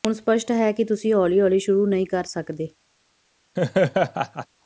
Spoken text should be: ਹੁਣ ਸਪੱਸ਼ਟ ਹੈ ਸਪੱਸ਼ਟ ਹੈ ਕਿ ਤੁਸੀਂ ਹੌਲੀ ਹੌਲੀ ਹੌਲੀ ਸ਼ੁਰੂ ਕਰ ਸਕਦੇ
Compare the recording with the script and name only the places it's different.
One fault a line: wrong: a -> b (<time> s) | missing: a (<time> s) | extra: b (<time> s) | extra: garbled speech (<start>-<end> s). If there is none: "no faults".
missing: ਸਪੱਸ਼ਟ ਹੈ (0.7 s)
wrong: ਹੌਲੀ ਸ਼ੁਰੂ -> ਸ਼ੁਰੂ ਨਹੀਂ (1.6 s)